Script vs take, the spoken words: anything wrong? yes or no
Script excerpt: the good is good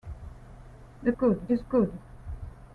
no